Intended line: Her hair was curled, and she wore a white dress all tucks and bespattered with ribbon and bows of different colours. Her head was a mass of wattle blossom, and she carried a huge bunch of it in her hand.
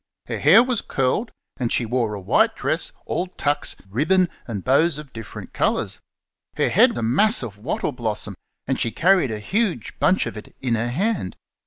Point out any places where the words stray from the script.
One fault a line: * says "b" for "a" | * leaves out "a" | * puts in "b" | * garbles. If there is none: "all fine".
* leaves out "and bespattered with"
* leaves out "was"